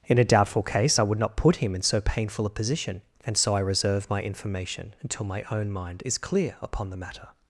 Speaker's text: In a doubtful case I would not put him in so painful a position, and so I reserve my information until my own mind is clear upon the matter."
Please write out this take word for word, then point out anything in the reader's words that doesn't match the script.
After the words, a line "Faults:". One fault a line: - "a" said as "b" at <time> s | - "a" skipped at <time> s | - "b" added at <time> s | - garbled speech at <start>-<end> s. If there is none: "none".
In a doubtful case I would not put him in so painful a position, and so I reserve my information until my own mind is clear upon the matter."
Faults:
none